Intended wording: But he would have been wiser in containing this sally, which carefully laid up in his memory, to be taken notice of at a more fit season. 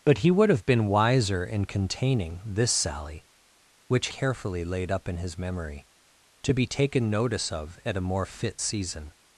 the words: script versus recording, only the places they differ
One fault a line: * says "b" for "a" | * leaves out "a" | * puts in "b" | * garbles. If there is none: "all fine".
all fine